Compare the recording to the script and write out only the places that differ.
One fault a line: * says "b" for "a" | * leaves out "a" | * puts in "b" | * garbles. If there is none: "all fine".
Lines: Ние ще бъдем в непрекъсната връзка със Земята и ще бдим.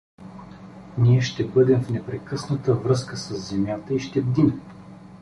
all fine